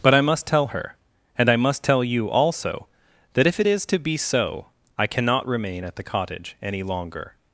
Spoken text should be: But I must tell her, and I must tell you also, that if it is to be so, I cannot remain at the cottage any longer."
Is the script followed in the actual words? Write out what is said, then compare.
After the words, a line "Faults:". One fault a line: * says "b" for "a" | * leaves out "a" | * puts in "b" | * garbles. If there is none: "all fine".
But I must tell her, and I must tell you also, that if it is to be so, I cannot remain at the cottage any longer."
Faults:
all fine